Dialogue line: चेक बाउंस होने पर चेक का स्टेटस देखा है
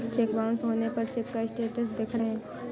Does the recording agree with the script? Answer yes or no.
yes